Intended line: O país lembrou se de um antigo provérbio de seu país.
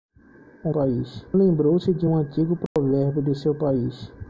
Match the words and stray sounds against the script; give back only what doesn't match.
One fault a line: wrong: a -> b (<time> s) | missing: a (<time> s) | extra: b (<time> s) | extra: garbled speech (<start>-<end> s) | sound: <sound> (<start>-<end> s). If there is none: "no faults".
sound: dropout (2.7-2.8 s)